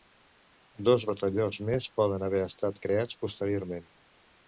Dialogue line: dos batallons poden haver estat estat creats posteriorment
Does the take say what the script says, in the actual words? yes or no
no